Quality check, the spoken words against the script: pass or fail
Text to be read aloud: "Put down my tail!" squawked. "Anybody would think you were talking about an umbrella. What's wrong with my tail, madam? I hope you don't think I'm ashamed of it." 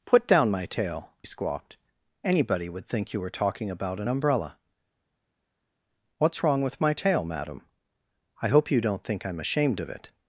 pass